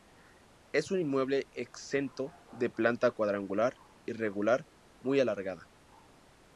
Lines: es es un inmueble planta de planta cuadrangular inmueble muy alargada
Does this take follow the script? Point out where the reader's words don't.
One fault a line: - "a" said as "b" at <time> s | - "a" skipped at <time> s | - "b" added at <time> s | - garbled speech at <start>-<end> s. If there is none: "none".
- "es" skipped at 0.9 s
- "planta" said as "exento" at 1.5 s
- "inmueble" said as "irregular" at 4.1 s